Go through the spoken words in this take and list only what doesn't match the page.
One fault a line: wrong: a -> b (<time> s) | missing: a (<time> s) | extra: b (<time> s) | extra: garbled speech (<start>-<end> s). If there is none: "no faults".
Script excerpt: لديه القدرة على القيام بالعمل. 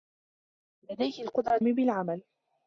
missing: على القيام (1.6 s)